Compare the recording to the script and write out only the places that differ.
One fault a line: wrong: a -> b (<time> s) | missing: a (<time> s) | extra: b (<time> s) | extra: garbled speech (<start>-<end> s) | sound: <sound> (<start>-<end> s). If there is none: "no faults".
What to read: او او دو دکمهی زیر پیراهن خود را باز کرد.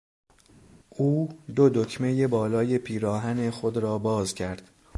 missing: او (1.3 s)
wrong: زیر -> بالای (2.3 s)